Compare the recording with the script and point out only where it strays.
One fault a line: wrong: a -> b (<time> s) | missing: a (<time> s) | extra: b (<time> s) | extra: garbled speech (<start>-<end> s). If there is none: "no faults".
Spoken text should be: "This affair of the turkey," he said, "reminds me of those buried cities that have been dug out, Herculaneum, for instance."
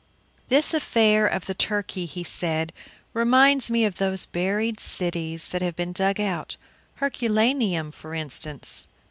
no faults